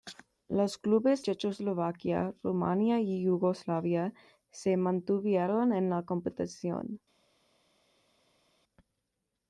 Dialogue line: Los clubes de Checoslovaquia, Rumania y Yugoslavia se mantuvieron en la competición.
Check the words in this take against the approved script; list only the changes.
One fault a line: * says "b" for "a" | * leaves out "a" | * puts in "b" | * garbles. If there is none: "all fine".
* leaves out "de"